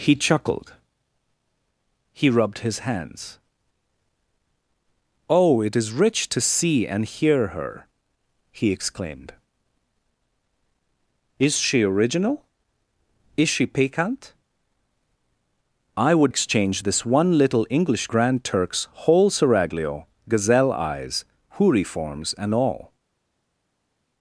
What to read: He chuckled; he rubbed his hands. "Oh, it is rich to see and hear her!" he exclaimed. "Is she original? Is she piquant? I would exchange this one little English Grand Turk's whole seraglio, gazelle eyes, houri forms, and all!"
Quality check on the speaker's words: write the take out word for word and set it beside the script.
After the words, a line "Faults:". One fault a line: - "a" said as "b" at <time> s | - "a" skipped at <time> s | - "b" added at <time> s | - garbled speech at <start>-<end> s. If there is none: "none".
He chuckled; he rubbed his hands. "Oh, it is rich to see and hear her!" he exclaimed. "Is she original? Is she piquant? I would exchange this one little English Grand Turk's whole seraglio, gazelle eyes, houri forms, and all!"
Faults:
none